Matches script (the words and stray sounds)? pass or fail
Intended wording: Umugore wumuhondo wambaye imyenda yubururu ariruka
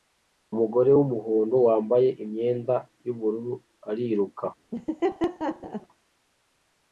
fail